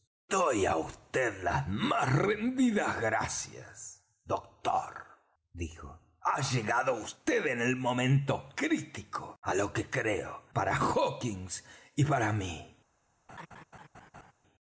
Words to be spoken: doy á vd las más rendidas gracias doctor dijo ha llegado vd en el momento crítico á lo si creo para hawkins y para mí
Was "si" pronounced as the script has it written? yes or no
no